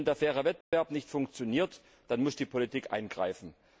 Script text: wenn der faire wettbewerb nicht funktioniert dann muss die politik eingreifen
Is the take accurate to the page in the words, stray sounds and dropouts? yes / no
no